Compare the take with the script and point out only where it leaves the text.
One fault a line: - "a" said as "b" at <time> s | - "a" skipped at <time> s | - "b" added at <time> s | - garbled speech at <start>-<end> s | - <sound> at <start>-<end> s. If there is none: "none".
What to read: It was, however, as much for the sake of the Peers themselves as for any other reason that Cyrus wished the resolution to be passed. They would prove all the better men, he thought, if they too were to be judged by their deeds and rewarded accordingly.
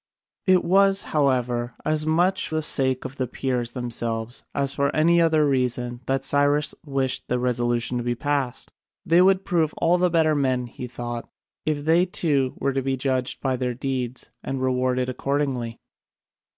- "for" skipped at 2.5 s